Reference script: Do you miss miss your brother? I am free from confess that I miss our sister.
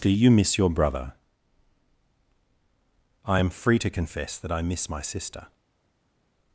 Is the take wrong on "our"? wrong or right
wrong